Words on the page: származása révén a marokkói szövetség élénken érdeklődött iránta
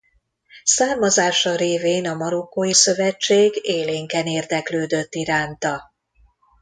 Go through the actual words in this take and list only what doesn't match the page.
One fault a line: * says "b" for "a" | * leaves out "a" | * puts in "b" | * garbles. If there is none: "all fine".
all fine